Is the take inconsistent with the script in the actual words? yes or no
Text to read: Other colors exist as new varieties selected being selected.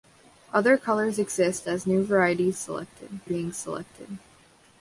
no